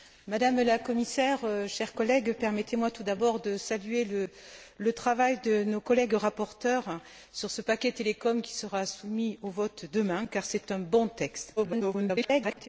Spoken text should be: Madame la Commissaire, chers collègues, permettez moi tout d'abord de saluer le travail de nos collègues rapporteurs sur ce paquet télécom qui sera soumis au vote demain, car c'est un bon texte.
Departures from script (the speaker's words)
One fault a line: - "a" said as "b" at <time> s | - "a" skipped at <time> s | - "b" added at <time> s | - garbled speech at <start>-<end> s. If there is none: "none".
- garbled speech at 11.6-12.7 s